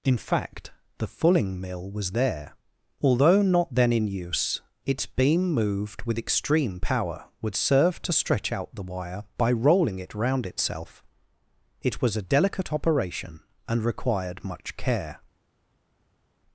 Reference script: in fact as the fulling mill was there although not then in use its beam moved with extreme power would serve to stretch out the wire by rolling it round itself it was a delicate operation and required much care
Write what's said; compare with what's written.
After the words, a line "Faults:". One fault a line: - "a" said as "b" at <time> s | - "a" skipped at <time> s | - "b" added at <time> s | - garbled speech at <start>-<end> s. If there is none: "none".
in fact the fulling mill was there although not then in use its beam moved with extreme power would serve to stretch out the wire by rolling it round itself it was a delicate operation and required much care
Faults:
- "as" skipped at 0.7 s